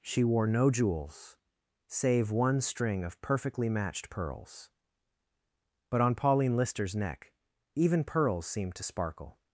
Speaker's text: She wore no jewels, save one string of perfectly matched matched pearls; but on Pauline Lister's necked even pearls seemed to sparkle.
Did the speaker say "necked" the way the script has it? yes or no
no